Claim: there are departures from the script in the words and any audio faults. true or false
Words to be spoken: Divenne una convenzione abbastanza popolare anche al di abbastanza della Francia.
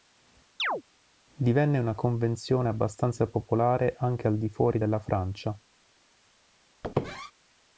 true